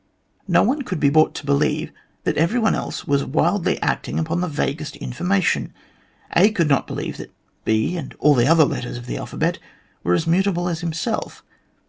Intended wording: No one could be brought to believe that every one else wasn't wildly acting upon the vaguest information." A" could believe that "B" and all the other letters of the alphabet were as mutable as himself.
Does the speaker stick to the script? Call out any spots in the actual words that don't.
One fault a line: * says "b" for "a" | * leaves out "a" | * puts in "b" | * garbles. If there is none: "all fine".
* says "was" for "wasn't"
* puts in "not"